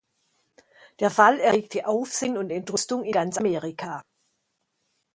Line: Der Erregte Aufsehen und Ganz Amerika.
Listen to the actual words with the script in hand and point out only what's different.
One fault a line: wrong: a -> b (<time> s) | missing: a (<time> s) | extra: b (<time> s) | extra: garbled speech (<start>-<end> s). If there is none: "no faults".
extra: Fall (1.1 s)
extra: Entrüstung in (2.5 s)